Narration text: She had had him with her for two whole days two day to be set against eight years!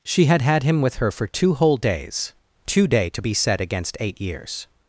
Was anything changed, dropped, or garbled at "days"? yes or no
no